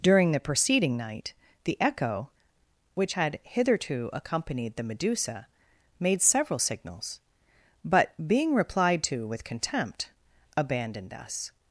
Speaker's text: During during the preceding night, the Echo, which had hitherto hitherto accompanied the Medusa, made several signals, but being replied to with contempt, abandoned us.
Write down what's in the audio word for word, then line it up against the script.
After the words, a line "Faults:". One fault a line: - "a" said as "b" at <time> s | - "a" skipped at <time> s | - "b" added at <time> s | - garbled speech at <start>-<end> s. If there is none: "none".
During the preceding night, the Echo, which had hitherto accompanied the Medusa, made several signals, but being replied to with contempt, abandoned us.
Faults:
- "during" skipped at 0.3 s
- "hitherto" skipped at 4.1 s